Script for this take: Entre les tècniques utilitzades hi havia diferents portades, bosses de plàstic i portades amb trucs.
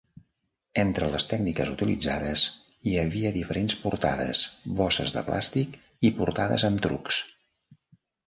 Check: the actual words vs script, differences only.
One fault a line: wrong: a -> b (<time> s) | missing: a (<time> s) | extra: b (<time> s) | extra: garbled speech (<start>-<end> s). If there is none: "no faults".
no faults